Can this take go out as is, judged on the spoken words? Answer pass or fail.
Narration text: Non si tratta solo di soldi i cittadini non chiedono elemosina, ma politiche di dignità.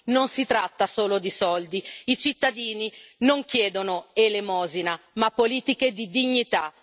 pass